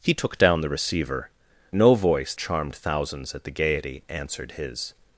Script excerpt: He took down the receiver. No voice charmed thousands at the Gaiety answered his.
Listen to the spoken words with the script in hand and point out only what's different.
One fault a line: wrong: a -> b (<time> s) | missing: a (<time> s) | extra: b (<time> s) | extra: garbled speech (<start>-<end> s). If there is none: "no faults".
no faults